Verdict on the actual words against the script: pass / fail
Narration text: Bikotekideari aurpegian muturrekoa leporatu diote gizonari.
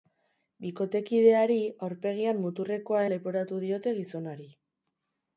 pass